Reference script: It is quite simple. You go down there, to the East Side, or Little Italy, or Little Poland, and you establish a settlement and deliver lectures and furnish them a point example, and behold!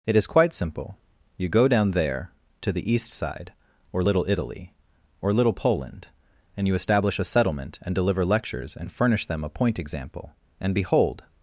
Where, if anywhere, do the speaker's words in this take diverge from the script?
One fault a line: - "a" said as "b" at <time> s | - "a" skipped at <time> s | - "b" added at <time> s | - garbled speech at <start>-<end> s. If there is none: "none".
none